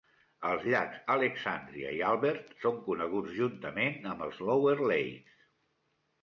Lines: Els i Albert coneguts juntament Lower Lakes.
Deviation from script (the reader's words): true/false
true